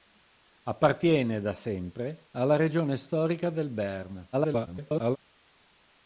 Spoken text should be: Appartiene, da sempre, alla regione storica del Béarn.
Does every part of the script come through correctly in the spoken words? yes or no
no